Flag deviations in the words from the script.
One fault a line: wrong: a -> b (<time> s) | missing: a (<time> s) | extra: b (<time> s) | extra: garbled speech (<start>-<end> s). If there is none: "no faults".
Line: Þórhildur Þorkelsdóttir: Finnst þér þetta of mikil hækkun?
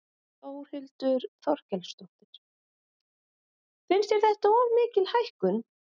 no faults